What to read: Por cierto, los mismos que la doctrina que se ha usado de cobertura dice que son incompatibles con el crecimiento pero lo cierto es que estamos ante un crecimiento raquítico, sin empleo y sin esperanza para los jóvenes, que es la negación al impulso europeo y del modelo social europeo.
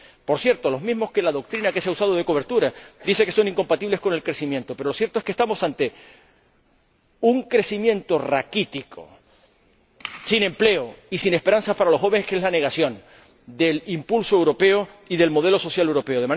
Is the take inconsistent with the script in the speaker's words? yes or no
yes